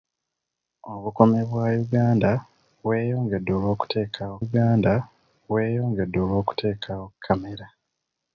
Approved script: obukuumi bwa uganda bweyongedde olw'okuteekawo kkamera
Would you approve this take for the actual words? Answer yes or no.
no